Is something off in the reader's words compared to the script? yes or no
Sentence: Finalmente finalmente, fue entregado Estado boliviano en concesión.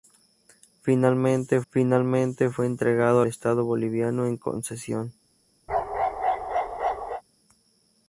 no